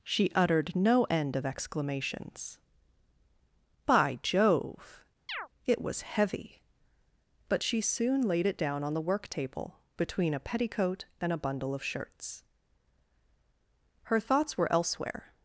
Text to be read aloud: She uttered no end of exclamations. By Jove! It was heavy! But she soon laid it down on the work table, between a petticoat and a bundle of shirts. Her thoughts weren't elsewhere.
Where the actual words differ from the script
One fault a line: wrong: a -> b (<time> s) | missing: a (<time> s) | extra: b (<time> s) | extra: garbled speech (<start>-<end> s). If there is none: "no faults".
wrong: weren't -> were (14.6 s)